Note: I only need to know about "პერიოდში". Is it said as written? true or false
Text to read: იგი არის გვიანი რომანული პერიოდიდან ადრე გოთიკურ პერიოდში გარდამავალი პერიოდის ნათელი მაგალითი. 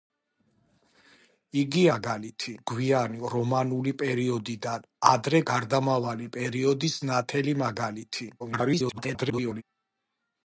false